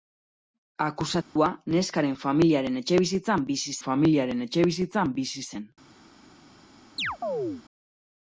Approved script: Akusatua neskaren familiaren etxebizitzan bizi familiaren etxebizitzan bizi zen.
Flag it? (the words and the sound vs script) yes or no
yes